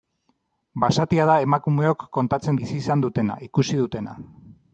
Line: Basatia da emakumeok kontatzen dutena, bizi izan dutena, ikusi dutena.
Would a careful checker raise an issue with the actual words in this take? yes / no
yes